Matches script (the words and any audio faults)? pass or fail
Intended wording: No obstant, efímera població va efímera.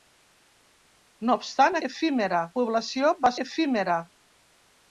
pass